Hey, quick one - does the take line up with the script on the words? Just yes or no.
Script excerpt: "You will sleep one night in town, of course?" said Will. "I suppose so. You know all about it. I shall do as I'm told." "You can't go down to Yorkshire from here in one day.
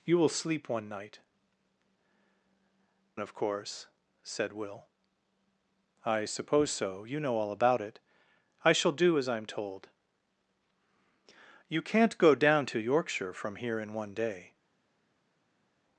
no